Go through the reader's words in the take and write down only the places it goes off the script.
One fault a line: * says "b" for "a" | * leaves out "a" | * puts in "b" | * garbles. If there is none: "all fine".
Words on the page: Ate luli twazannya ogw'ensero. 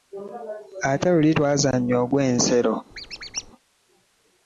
all fine